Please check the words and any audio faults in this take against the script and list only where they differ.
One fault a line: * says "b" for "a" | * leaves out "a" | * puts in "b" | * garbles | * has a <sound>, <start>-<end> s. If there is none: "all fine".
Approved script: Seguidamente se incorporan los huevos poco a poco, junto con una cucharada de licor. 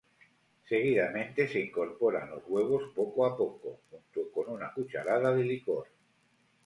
all fine